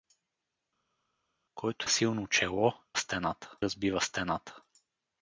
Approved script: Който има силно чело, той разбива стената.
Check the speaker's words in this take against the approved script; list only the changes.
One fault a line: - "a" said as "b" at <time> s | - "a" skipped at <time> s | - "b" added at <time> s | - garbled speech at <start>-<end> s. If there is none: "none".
- "има" skipped at 1.9 s
- "той" said as "стената" at 3.0 s